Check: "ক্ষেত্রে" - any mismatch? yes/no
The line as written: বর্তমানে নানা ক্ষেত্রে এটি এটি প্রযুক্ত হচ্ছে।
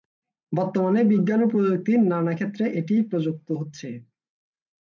no